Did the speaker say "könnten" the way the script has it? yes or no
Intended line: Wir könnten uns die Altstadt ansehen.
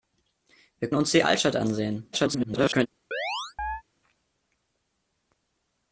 no